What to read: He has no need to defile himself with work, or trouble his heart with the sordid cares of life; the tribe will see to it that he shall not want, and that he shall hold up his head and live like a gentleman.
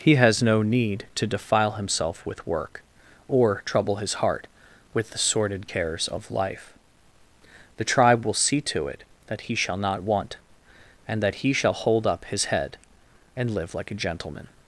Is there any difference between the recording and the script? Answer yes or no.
no